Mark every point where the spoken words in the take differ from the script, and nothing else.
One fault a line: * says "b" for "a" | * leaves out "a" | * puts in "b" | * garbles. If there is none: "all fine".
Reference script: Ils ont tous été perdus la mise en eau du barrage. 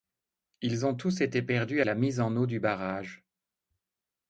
all fine